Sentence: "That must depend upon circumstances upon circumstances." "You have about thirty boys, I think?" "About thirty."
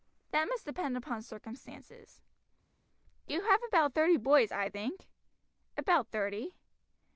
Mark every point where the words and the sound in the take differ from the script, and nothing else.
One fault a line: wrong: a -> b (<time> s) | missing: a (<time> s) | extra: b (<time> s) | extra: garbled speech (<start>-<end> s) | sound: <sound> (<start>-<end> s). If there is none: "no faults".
missing: upon circumstances (2.2 s)